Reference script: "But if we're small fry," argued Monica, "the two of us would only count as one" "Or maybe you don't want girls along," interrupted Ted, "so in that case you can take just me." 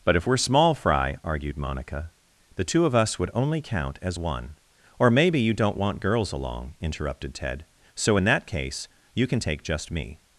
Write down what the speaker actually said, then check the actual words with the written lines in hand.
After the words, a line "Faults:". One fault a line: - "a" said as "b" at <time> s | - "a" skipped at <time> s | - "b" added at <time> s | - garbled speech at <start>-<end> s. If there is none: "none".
"But if we're small fry," argued Monica, "the two of us would only count as one" "Or maybe you don't want girls along," interrupted Ted, "so in that case you can take just me."
Faults:
none